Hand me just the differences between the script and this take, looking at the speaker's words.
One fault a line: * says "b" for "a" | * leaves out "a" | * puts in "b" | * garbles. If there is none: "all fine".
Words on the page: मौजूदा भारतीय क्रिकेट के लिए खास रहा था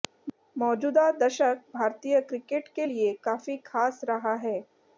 * puts in "दशक"
* puts in "काफी"
* says "है" for "था"